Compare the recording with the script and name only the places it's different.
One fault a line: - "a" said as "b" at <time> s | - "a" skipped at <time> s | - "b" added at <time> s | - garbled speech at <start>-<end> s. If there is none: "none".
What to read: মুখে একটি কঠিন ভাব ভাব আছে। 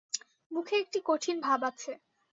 - "ভাব" skipped at 1.6 s